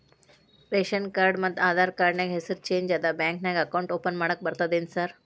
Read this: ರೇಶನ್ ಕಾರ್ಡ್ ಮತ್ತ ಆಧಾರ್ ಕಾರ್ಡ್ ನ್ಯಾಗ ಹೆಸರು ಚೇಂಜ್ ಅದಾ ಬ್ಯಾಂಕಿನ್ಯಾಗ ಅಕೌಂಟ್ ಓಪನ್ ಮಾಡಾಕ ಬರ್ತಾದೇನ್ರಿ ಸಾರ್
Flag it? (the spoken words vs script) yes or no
no